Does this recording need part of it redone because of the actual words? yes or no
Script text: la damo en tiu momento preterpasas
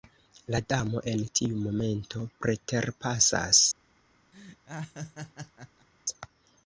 no